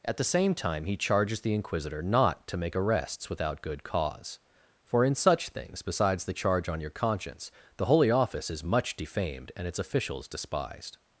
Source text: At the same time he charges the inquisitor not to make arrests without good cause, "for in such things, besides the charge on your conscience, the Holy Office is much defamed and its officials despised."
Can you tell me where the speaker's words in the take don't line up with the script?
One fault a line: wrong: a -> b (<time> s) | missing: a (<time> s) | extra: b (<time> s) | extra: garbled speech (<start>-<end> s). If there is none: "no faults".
no faults